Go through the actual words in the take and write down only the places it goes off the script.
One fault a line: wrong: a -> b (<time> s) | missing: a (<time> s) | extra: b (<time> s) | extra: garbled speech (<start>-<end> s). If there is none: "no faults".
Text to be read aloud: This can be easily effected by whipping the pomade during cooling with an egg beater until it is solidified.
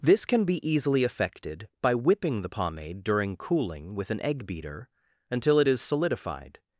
no faults